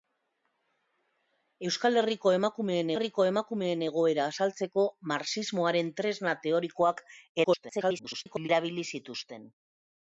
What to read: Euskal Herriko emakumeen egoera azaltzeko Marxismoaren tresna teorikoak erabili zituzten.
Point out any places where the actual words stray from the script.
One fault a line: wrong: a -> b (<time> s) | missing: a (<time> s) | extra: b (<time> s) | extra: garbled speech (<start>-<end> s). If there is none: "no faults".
extra: Herriko emakumeen (2.9 s)
extra: garbled speech (7.4-8.5 s)